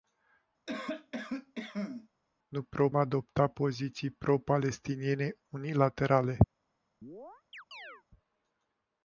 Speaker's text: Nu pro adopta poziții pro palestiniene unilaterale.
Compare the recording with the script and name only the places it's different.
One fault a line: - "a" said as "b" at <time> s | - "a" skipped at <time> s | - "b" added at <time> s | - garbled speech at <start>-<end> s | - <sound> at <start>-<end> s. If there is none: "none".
- cough at 0.7-2.1 s
- chirp at 7.0-8.0 s